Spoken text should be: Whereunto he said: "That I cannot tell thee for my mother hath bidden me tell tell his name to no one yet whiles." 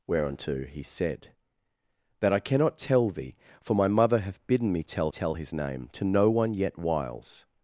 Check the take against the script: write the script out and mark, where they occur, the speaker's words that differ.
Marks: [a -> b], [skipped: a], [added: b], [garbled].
Whereunto he said: "That I cannot tell thee for my mother hath bidden me tell tell his name to no one yet whiles."